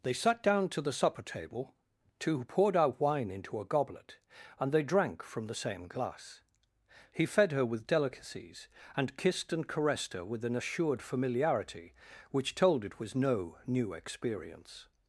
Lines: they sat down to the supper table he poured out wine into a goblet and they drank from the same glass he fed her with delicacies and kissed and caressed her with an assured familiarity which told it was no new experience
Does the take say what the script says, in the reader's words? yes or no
no